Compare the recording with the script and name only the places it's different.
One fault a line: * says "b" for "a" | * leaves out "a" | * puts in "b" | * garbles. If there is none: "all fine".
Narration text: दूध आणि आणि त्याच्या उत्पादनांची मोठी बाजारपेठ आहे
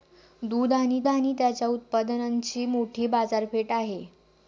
all fine